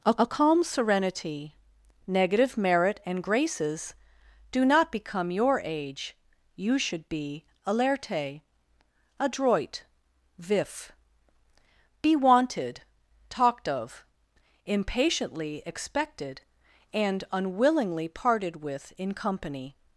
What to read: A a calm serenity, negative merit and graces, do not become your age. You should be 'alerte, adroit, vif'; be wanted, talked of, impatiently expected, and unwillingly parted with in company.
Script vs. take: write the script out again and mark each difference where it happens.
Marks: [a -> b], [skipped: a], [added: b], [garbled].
A a calm serenity, negative merit and graces, do not become your age. You should be 'alerte, adroit, vif'; be wanted, talked of, impatiently expected, and unwillingly parted with in company.